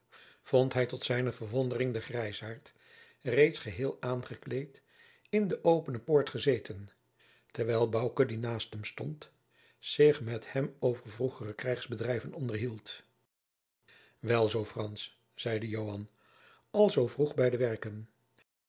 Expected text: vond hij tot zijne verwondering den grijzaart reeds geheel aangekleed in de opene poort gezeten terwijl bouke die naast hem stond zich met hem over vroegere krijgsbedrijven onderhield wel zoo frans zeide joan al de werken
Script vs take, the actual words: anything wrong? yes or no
yes